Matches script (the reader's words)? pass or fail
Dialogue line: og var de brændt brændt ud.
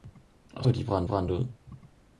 pass